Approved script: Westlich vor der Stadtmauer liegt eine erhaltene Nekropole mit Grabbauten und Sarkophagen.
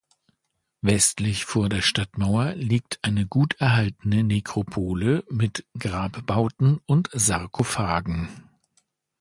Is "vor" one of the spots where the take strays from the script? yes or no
no